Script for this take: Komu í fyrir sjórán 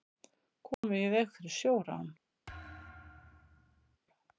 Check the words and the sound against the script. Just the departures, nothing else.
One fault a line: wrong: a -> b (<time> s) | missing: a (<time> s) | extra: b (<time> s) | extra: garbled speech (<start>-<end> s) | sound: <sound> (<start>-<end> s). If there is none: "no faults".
sound: dropout (0.7-0.8 s)
extra: veg (1.1 s)
sound: thud (2.5-4.0 s)